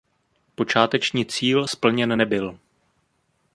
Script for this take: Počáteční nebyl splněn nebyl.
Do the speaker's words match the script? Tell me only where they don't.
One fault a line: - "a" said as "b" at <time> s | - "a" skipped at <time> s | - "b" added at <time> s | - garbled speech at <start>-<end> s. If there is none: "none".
- "nebyl" said as "cíl" at 1.2 s